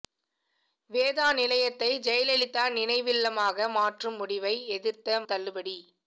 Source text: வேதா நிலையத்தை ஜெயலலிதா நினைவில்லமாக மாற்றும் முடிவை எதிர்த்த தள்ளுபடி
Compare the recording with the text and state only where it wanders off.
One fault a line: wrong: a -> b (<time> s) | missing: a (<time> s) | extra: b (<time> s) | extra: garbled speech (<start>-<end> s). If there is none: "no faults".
no faults